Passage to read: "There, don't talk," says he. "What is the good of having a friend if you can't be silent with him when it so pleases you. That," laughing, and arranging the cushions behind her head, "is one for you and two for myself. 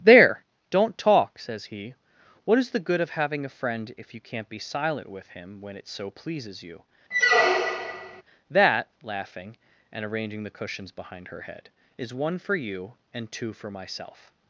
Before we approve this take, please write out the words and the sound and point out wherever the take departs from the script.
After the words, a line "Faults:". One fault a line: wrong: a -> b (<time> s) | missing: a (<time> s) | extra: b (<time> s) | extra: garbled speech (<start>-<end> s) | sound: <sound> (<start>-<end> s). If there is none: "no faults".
"There, don't talk," says he. "What is the good of having a friend if you can't be silent with him when it so pleases you. That," laughing, and arranging the cushions behind her head, "is one for you and two for myself.
Faults:
sound: squeak (7.1-8.2 s)